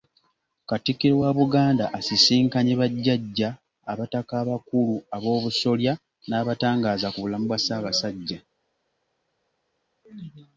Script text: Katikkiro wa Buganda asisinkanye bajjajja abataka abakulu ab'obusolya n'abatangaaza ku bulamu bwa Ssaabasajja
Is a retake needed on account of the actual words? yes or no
no